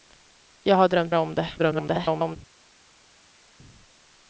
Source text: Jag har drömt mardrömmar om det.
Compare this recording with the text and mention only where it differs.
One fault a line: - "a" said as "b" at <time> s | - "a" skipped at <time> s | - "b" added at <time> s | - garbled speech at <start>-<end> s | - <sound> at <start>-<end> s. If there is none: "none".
- "mardrömmar" skipped at 1.1 s
- garbled speech at 1.6-2.4 s